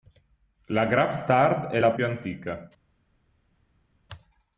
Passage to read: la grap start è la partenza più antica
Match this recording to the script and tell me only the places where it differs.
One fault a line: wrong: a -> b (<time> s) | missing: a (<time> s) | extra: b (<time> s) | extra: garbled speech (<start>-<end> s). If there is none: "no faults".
missing: partenza (1.9 s)